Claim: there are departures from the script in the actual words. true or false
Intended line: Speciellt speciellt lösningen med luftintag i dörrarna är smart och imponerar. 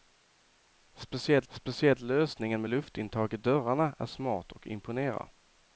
false